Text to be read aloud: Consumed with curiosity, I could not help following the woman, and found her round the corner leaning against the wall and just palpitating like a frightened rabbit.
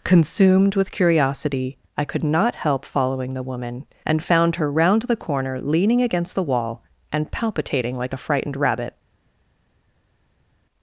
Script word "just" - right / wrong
wrong